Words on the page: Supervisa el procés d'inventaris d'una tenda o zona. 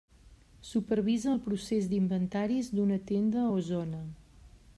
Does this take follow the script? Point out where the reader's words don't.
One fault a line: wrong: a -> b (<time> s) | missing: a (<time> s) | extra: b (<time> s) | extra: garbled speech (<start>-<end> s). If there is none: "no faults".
no faults